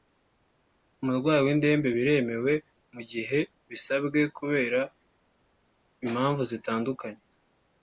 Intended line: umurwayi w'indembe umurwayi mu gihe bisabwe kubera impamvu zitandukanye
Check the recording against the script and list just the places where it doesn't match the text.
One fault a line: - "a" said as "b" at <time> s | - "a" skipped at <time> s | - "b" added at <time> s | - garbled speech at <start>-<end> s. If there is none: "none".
- "umurwayi" said as "biremewe" at 1.9 s